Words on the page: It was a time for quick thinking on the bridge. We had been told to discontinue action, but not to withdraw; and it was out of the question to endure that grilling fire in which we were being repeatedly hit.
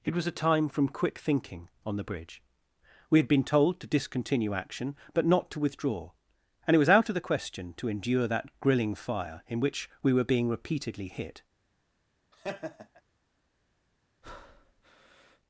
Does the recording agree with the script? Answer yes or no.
no